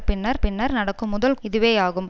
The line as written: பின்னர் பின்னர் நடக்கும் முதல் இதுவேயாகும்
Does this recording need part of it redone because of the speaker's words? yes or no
no